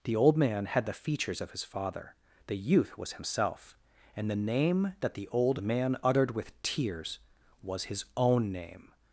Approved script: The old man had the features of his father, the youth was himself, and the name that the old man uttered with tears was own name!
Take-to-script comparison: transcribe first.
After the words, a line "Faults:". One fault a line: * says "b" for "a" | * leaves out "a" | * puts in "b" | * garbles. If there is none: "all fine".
The old man had the features of his father, the youth was himself, and the name that the old man uttered with tears was his own name!
Faults:
* puts in "his"